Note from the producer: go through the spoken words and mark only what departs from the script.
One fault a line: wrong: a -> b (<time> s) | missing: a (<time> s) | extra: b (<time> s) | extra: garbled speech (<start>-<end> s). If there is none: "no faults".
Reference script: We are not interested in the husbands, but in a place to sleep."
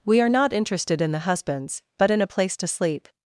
no faults